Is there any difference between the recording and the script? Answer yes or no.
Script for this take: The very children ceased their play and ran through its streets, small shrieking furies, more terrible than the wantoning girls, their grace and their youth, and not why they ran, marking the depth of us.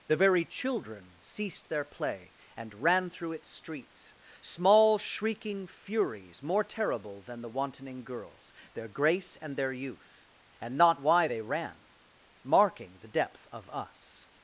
no